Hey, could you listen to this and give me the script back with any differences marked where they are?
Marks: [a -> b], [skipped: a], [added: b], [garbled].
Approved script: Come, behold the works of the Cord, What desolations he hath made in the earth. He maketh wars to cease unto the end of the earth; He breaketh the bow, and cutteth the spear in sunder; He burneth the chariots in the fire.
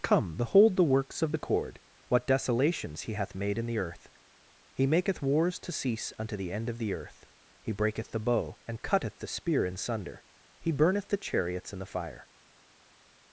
Come, behold the works of the Cord, What desolations he hath made in the earth. He maketh wars to cease unto the end of the earth; He breaketh the bow, and cutteth the spear in sunder; He burneth the chariots in the fire.